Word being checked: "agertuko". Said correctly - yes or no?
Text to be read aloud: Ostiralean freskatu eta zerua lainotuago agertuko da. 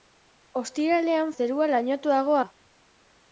no